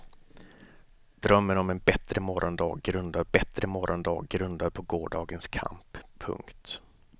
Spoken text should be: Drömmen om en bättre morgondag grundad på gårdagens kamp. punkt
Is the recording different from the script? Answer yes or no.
yes